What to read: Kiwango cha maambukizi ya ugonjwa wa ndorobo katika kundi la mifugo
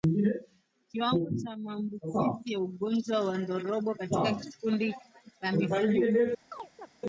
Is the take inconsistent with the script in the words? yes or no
no